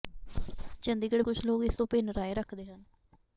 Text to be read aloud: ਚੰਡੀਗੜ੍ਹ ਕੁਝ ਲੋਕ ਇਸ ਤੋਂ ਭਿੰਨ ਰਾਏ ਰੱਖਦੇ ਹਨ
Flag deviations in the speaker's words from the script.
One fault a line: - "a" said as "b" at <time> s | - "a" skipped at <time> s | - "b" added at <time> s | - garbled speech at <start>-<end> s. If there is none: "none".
none